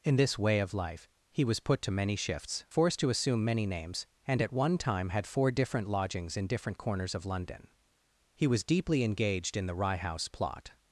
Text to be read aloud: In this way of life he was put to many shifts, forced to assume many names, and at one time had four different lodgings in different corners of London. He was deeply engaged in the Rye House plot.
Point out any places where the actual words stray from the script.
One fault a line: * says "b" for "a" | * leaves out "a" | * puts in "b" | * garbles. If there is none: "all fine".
all fine